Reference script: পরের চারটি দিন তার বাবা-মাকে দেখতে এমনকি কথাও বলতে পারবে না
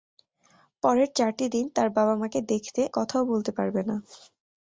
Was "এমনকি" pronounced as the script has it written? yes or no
no